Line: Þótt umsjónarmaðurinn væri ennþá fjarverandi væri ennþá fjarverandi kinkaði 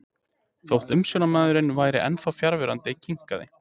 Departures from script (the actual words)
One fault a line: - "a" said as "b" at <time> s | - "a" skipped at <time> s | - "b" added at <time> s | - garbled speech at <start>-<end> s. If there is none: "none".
- "væri ennþá fjarverandi" skipped at 3.0 s